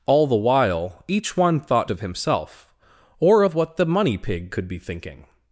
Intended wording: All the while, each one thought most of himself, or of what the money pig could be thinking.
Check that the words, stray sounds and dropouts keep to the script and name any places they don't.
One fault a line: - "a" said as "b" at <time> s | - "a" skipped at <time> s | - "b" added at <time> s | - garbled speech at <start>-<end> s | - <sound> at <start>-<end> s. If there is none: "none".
- "most" skipped at 1.9 s